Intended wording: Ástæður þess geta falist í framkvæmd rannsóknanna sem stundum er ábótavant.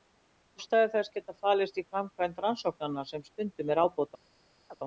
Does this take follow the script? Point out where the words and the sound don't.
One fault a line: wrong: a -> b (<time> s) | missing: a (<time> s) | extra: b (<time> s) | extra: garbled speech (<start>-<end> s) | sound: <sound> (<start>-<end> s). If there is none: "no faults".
sound: chirp (4.7-4.8 s)